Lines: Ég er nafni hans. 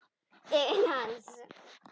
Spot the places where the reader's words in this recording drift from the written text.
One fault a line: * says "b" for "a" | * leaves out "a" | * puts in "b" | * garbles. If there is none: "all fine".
* leaves out "nafni"